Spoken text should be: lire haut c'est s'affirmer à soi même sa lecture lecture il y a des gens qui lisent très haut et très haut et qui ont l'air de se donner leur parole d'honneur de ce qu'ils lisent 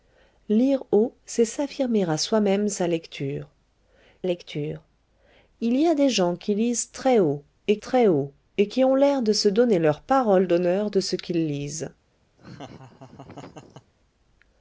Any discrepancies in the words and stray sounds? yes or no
yes